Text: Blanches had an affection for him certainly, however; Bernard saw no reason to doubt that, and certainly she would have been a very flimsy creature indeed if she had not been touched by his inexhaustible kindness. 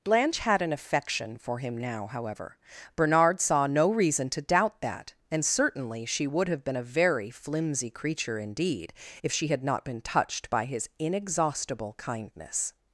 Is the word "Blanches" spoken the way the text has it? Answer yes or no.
no